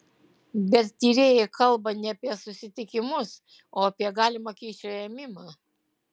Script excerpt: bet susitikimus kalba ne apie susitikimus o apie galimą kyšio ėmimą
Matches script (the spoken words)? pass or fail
fail